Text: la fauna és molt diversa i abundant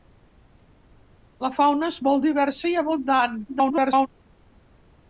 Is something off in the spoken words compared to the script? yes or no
yes